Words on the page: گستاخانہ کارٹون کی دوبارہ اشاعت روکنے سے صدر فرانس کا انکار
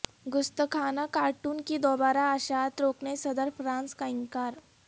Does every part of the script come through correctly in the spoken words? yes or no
no